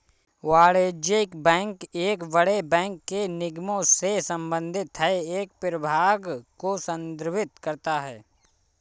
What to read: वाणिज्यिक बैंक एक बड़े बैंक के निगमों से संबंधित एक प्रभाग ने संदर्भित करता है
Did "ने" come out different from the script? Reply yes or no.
yes